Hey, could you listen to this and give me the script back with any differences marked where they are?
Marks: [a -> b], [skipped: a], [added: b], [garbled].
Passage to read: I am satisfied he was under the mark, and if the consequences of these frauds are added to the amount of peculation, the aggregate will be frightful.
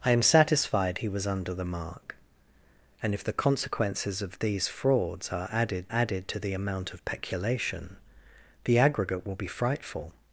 I am satisfied he was under the mark, and if the consequences of these frauds are added [added: added] to the amount of peculation, the aggregate will be frightful.